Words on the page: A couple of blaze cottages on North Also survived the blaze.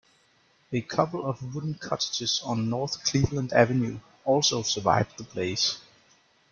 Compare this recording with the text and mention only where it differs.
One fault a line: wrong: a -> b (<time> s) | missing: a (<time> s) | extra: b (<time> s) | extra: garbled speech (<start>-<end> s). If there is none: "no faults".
wrong: blaze -> wooden (1.5 s)
extra: Cleveland Avenue (3.0 s)